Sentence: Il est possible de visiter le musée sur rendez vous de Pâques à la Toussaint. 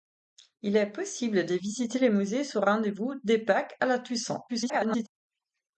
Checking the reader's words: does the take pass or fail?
fail